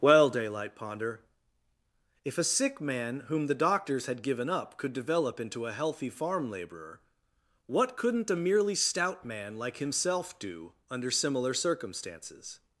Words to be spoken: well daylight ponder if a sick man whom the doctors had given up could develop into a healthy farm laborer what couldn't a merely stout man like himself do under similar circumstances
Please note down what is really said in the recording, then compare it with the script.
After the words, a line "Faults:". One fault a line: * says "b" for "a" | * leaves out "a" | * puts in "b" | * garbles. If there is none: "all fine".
well daylight ponder if a sick man whom the doctors had given up could develop into a healthy farm laborer what couldn't a merely stout man like himself do under similar circumstances
Faults:
all fine